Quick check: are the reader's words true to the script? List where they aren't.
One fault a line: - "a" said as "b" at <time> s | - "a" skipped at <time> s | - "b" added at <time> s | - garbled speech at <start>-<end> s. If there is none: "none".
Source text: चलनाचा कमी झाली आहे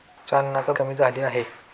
none